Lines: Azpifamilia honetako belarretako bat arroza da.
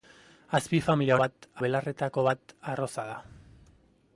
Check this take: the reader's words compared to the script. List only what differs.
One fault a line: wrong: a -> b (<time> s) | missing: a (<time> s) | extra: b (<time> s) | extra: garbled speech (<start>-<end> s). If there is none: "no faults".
wrong: honetako -> bat (1.2 s)